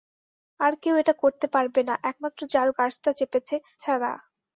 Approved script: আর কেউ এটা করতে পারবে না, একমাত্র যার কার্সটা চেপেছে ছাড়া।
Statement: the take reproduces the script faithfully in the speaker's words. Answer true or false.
true